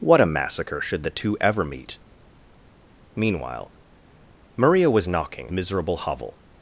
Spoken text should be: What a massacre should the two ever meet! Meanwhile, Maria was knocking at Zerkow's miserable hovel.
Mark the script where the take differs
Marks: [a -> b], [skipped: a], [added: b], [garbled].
What a massacre should the two ever meet! Meanwhile, Maria was knocking [skipped: at Zerkow's] miserable hovel.